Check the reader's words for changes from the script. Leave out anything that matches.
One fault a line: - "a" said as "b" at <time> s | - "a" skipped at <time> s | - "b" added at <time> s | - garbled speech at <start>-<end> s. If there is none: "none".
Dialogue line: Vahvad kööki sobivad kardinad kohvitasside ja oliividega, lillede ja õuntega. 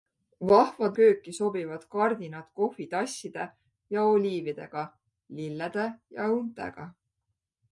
none